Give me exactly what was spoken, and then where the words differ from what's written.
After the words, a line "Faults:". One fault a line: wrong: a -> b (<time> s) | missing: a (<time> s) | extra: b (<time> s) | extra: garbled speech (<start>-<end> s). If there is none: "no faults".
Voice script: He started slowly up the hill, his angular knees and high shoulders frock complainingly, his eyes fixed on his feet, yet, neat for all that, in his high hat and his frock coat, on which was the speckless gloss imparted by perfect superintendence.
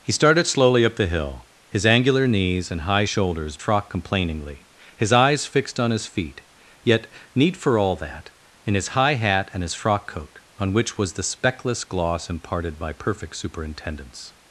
He started slowly up the hill, his angular knees and high shoulders frock complainingly, his eyes fixed on his feet, yet, neat for all that, in his high hat and his frock coat, on which was the speckless gloss imparted by perfect superintendence.
Faults:
no faults